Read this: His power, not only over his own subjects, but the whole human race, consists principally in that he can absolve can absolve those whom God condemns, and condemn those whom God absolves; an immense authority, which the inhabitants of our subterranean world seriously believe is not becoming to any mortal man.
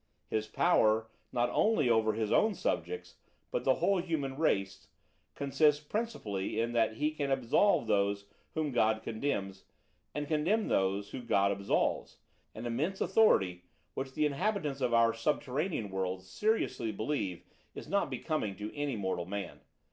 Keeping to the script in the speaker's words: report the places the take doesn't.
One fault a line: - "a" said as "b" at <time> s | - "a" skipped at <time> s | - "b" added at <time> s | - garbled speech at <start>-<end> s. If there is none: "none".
- "can absolve" skipped at 7.9 s